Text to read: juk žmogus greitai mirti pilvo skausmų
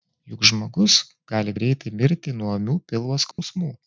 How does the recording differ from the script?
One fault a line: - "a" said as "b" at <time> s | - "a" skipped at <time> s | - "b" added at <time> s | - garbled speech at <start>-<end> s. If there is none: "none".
- "gali" added at 1.3 s
- "nuo ūmių" added at 2.4 s